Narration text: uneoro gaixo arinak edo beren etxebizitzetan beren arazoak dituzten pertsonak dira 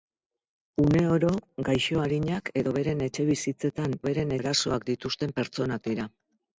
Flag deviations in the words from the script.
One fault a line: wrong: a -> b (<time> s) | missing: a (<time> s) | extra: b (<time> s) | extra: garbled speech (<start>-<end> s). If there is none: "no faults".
no faults